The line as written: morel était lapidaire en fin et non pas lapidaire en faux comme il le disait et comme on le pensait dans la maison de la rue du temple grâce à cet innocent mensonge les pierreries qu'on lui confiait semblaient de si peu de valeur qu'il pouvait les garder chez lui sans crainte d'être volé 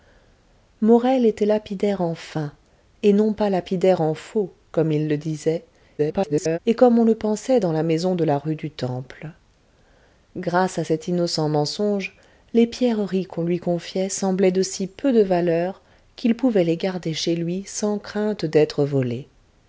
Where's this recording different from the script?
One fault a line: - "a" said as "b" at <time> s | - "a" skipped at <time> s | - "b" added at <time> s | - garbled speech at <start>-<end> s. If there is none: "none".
- garbled speech at 6.0-6.6 s